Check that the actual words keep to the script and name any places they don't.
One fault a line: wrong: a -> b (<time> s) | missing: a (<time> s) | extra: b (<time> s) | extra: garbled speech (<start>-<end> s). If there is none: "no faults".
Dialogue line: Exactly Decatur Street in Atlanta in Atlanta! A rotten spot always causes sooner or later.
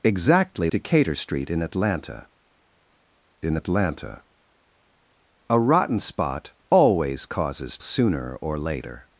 no faults